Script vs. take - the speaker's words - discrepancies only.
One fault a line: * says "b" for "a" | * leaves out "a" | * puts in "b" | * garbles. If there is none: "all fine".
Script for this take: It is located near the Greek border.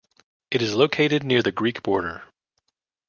all fine